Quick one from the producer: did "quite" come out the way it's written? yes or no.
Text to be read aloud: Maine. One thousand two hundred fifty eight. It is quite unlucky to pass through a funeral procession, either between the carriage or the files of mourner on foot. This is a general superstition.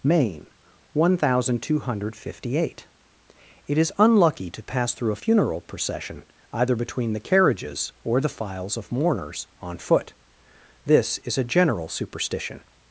no